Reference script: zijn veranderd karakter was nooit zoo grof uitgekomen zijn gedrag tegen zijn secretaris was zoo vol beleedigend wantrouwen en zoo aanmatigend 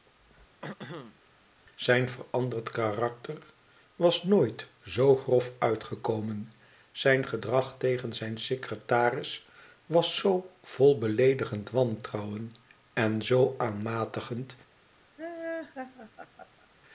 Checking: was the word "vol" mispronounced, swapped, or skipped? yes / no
no